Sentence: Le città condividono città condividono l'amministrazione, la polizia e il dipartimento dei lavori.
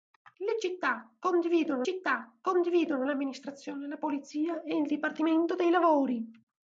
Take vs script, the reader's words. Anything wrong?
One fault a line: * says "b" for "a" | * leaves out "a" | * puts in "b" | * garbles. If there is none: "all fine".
all fine